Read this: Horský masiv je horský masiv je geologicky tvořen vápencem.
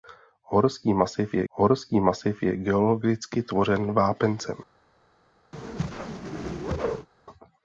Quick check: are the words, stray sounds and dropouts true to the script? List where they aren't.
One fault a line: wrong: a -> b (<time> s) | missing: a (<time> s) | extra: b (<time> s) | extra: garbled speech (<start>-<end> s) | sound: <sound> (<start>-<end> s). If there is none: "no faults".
sound: whoosh (5.5-7.1 s)